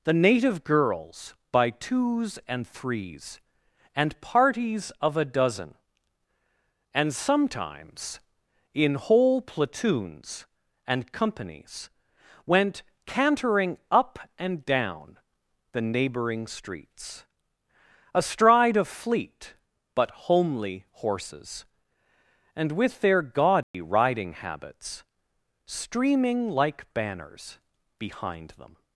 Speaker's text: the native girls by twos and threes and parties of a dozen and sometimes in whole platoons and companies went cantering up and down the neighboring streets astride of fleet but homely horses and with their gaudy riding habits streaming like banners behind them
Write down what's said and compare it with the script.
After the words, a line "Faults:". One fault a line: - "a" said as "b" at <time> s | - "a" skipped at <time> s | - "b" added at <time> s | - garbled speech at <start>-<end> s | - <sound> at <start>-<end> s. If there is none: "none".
the native girls by twos and threes and parties of a dozen and sometimes in whole platoons and companies went cantering up and down the neighboring streets astride of fleet but homely horses and with their gaudy riding habits streaming like banners behind them
Faults:
- dropout at 23.6-23.7 s